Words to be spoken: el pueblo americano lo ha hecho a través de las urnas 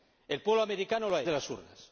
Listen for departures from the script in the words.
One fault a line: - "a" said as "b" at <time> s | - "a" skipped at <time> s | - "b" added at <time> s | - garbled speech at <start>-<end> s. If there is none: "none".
- "hecho a través" skipped at 1.2 s